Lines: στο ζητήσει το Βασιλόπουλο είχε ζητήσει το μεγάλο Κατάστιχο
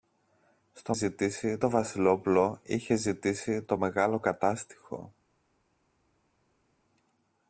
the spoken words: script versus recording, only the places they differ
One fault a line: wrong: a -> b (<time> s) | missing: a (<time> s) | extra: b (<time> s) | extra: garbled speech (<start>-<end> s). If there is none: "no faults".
no faults